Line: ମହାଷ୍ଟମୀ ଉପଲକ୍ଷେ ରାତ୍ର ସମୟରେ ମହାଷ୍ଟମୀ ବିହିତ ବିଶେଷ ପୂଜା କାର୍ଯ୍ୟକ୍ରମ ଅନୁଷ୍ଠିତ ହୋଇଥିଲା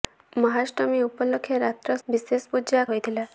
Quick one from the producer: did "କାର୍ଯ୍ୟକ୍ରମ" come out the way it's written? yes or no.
no